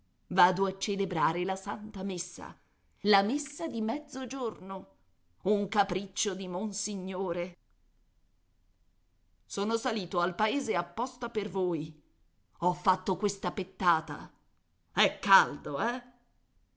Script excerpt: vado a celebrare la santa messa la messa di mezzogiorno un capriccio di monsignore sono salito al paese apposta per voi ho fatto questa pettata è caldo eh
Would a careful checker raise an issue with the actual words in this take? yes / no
no